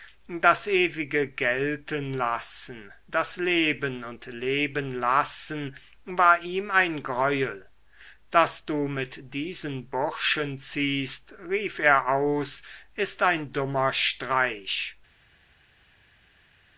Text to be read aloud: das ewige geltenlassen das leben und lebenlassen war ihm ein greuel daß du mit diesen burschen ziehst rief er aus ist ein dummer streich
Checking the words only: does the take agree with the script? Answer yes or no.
yes